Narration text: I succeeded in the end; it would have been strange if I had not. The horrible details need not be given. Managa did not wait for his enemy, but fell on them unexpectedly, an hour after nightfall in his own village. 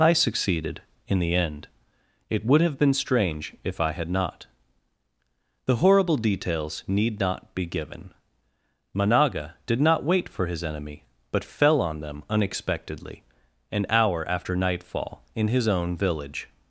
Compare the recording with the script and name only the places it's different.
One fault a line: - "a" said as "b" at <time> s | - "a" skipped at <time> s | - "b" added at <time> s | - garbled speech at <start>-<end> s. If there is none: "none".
none